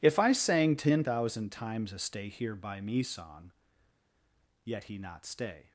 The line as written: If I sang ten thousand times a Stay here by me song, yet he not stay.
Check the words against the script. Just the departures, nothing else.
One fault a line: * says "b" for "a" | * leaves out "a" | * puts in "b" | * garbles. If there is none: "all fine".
all fine